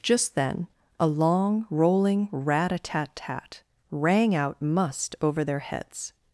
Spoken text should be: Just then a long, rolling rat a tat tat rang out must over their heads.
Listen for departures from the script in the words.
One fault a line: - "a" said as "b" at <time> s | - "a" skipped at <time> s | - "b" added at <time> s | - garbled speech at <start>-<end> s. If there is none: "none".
none